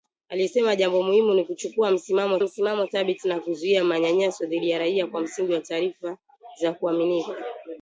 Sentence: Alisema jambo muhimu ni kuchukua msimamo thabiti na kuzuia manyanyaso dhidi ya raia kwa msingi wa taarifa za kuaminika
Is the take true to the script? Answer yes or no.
no